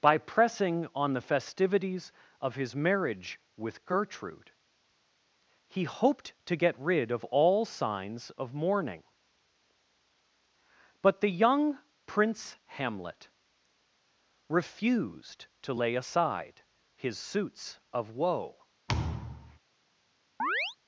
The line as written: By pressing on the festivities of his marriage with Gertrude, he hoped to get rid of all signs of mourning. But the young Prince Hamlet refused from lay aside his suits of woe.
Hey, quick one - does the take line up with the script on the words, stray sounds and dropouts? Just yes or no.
no